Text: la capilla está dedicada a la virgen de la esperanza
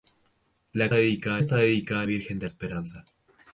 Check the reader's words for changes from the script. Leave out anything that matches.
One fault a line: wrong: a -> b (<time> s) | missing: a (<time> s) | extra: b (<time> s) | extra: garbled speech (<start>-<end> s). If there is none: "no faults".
wrong: capilla -> dedicada (0.9 s)
missing: la (2.1 s)
missing: la (2.5 s)